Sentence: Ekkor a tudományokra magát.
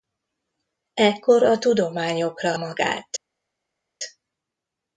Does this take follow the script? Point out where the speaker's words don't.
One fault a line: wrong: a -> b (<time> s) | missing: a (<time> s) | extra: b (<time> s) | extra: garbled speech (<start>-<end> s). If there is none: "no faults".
no faults